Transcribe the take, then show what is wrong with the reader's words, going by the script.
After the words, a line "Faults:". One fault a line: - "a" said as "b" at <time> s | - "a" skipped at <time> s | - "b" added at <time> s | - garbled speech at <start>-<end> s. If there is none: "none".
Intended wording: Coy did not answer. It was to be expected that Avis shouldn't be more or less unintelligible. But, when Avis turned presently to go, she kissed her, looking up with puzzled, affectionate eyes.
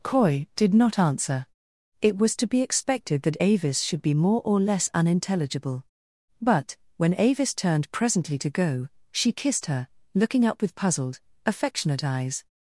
Coy did not answer. It was to be expected that Avis should be more or less unintelligible. But, when Avis turned presently to go, she kissed her, looking up with puzzled, affectionate eyes.
Faults:
- "shouldn't" said as "should" at 3.8 s